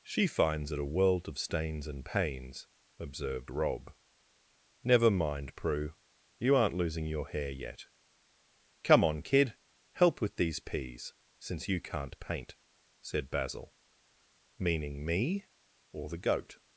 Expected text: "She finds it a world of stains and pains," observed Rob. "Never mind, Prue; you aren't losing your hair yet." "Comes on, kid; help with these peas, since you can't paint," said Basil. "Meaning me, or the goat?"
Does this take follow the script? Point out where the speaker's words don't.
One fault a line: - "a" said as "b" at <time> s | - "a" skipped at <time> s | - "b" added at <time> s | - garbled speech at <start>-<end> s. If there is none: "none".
- "Comes" said as "Come" at 8.8 s